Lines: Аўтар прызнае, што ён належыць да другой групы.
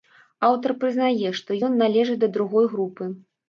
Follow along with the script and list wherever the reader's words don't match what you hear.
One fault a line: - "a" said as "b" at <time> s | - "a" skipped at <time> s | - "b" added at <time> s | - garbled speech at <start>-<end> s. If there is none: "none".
none